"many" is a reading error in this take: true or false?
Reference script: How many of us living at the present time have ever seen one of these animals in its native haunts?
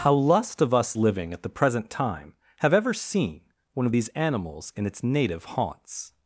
true